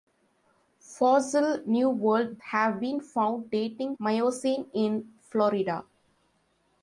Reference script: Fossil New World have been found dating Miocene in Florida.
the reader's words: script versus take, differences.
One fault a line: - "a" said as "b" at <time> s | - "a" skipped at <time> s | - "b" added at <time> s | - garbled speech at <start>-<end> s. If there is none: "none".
none